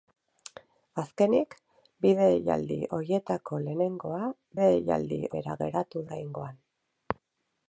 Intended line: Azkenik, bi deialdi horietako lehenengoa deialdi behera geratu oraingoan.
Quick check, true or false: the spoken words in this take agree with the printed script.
true